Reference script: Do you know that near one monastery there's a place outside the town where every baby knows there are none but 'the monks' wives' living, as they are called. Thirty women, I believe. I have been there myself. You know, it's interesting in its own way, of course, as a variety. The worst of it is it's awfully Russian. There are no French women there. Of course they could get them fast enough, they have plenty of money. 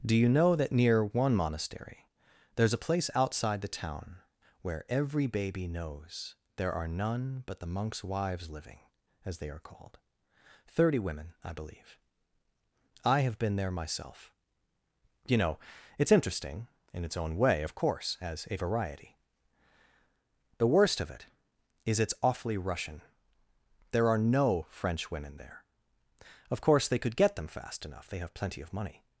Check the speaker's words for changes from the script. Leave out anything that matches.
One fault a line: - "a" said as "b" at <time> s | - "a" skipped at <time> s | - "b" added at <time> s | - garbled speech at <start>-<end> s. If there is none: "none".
none